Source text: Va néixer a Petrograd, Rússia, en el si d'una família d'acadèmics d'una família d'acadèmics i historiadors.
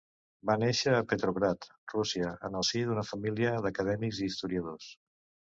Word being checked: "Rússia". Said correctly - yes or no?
yes